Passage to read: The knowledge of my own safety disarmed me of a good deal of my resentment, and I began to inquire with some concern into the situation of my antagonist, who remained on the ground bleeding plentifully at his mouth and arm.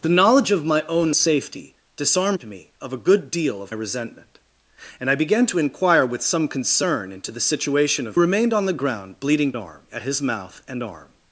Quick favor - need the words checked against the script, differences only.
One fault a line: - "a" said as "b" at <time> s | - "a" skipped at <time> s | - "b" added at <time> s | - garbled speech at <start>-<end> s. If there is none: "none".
- "my" skipped at 3.8 s
- "my antagonist who" skipped at 8.2 s
- "plentifully" said as "arm" at 9.5 s